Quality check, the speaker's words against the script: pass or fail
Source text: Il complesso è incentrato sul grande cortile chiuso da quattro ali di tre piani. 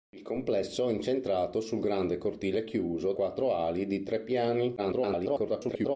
fail